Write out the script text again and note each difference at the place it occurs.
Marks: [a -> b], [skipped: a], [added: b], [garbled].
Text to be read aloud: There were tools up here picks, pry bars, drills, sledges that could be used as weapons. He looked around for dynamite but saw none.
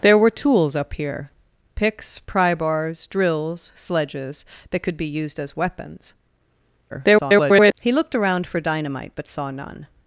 There were tools up here picks, pry bars, drills, sledges that could be used as weapons. [garbled] He looked around for dynamite but saw none.